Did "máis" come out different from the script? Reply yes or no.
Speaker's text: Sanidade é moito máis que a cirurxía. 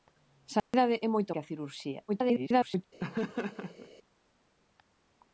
yes